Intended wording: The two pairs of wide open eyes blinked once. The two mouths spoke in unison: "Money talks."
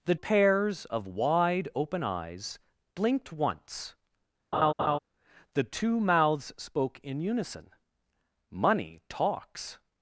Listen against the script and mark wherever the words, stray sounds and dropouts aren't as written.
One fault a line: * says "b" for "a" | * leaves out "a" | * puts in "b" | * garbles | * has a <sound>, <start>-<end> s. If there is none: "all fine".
* leaves out "two"
* has a laugh, 4.5-5.0 s